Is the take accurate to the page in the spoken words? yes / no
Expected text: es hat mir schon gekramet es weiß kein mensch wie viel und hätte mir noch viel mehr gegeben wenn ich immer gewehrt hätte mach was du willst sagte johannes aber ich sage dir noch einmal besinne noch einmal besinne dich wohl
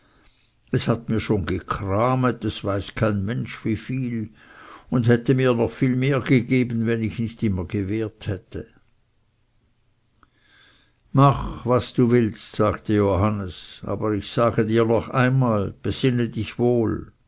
no